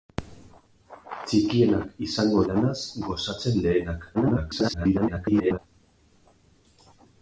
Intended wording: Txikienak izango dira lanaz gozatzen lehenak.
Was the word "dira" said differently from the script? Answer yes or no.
yes